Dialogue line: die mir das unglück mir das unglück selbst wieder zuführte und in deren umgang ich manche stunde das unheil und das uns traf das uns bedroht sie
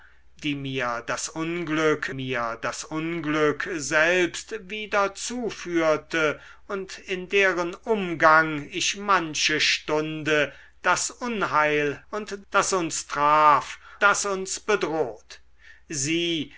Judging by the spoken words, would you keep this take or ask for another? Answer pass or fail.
pass